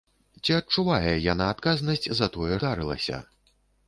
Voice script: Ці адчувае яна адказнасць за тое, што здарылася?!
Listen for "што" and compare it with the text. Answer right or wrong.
wrong